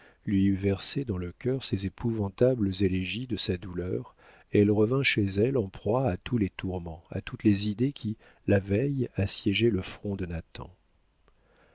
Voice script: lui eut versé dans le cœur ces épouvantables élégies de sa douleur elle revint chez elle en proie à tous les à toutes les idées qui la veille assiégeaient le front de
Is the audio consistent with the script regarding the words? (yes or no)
no